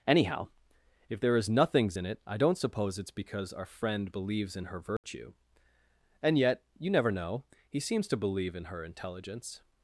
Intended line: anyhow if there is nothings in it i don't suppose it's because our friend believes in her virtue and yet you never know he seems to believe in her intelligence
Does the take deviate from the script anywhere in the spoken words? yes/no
no